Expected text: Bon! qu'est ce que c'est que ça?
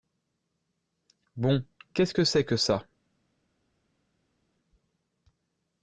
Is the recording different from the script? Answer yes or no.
no